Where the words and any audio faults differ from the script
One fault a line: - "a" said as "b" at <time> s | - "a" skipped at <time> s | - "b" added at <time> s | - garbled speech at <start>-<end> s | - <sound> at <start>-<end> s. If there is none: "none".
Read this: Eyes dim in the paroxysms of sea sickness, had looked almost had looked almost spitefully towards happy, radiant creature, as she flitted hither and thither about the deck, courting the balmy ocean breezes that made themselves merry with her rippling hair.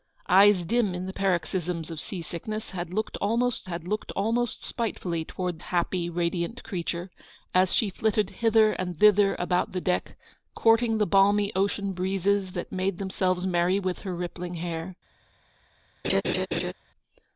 - laugh at 16.0-16.7 s